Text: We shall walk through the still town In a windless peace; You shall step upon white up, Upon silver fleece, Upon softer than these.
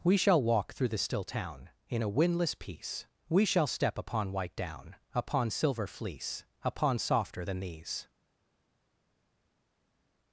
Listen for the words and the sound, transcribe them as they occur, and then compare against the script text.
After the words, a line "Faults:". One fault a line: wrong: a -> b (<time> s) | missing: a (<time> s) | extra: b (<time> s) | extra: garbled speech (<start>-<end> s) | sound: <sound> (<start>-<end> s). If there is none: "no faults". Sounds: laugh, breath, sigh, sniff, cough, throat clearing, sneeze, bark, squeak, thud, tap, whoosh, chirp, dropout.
We shall walk through the still town In a windless peace; We shall step upon white down, Upon silver fleece, Upon softer than these.
Faults:
wrong: You -> We (3.3 s)
wrong: up -> down (4.5 s)